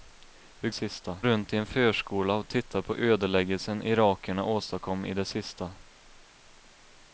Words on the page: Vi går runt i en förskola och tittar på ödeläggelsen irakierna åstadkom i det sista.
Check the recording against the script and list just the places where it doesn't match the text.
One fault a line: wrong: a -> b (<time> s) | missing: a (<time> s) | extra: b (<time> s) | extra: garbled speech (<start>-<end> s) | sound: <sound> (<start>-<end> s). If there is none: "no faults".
wrong: går -> sista (0.7 s)